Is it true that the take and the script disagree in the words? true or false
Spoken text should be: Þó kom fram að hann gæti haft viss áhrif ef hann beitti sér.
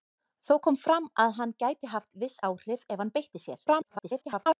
true